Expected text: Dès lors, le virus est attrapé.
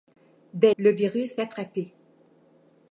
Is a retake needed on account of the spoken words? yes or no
yes